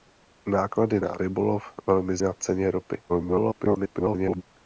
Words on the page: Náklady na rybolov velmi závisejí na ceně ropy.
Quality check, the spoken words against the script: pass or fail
fail